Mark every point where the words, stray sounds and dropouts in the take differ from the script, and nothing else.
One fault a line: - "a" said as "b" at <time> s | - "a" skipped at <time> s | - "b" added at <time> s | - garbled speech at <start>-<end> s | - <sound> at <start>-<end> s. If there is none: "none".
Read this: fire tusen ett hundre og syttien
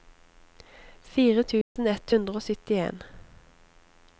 - dropout at 1.6-1.8 s